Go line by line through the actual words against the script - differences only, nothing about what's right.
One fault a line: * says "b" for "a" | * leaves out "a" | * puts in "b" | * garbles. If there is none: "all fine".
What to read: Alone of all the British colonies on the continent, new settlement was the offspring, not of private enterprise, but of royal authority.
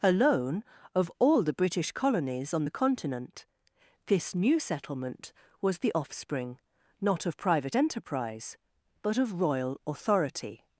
* puts in "this"